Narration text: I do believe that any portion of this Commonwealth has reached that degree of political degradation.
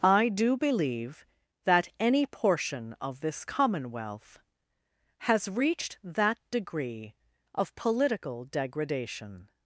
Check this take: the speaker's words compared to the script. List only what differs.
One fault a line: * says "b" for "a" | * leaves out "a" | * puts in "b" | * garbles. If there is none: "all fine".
all fine